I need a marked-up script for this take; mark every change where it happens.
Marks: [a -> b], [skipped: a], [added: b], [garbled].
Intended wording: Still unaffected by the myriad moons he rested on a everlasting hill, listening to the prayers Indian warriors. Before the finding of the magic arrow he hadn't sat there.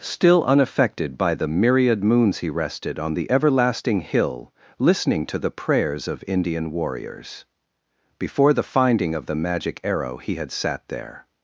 Still unaffected by the myriad moons he rested on [a -> the] everlasting hill, listening to the prayers [added: of] Indian warriors. Before the finding of the magic arrow he [hadn't -> had] sat there.